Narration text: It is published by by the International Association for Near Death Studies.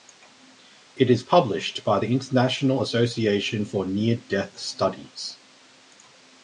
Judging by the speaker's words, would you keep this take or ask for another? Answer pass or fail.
fail